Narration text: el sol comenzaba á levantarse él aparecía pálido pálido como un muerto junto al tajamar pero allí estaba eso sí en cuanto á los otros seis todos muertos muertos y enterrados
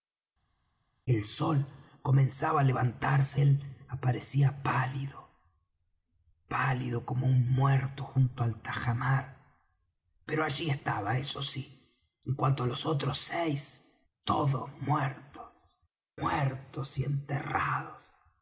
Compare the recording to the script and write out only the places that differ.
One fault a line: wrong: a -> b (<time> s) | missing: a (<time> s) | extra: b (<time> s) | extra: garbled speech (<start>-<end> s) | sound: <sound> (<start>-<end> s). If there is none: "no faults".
no faults